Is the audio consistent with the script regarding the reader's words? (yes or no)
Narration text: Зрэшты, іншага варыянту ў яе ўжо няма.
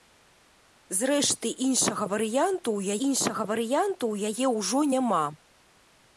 no